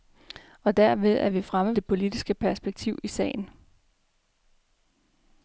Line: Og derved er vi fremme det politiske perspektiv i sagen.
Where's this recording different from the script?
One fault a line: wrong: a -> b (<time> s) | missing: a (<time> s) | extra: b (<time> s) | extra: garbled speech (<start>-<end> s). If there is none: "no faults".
no faults